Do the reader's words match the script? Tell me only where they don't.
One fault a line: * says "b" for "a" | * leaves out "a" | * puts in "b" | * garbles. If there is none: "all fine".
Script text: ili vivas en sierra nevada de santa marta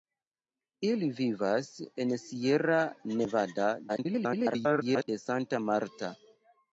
* garbles